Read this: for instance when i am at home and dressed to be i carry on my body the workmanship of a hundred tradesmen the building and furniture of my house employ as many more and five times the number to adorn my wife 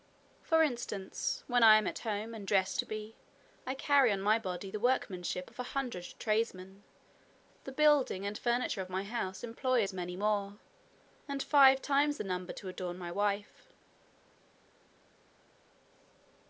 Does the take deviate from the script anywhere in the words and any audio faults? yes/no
no